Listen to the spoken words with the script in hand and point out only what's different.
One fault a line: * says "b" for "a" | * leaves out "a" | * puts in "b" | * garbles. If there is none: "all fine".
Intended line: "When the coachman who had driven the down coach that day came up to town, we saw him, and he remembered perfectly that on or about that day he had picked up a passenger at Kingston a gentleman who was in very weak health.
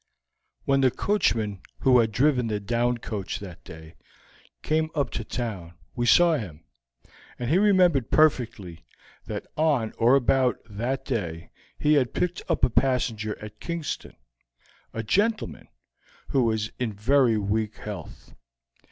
all fine